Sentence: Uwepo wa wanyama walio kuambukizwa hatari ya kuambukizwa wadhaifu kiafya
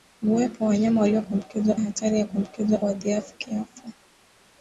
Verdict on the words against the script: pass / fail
pass